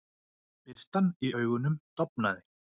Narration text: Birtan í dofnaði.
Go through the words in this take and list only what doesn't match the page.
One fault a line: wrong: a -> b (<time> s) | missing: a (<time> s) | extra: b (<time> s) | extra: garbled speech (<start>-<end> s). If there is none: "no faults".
extra: augunum (1.4 s)